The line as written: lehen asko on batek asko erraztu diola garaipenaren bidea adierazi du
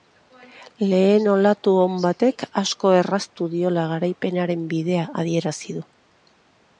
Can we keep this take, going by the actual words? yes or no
no